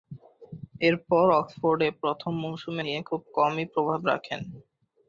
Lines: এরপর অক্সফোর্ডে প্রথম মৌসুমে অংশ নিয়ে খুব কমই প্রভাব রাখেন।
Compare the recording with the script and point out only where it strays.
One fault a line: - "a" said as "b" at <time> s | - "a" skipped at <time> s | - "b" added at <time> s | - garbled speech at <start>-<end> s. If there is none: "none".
- "অংশ" skipped at 2.8 s